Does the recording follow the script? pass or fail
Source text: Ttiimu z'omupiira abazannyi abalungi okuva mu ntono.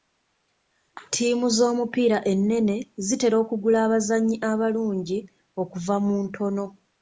fail